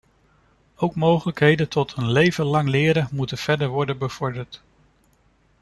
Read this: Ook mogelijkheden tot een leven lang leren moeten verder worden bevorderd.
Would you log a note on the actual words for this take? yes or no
no